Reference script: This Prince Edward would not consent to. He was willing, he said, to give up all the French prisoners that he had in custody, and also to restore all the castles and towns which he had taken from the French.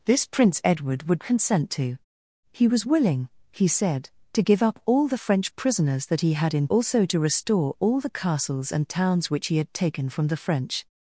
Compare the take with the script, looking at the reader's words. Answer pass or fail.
fail